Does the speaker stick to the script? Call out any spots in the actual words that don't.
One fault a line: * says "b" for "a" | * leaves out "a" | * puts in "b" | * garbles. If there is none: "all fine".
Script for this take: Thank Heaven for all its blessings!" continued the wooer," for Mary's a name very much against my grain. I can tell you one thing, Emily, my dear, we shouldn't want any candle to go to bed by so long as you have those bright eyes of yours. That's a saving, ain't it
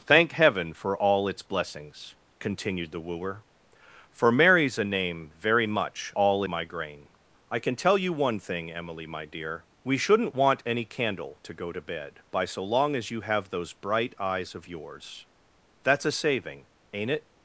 * says "all" for "against"